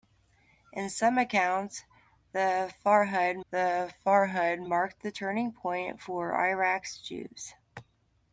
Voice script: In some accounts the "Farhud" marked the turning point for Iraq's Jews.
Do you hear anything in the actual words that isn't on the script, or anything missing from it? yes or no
yes